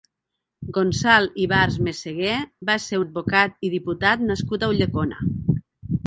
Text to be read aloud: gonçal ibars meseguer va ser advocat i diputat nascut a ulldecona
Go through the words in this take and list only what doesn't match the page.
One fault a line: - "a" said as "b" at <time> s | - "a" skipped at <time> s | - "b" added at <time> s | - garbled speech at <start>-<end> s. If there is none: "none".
none